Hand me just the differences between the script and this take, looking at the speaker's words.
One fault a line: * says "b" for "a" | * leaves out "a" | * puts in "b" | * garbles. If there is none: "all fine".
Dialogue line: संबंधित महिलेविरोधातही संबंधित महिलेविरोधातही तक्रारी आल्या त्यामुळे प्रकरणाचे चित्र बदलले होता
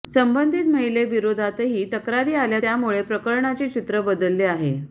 * leaves out "संबंधित महिलेविरोधातही"
* says "आहे" for "होता"